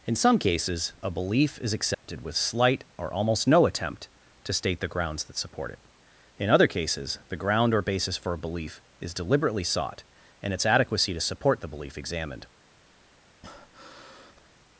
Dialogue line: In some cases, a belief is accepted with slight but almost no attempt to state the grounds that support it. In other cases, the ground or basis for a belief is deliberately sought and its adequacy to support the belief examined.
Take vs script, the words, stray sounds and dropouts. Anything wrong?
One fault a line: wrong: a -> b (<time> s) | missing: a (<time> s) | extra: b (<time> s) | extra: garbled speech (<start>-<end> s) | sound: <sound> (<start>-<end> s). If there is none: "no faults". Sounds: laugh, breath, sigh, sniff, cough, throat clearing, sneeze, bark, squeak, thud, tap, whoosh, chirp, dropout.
sound: dropout (1.9-2.0 s)
wrong: but -> or (3.0 s)
sound: breath (13.4-14.5 s)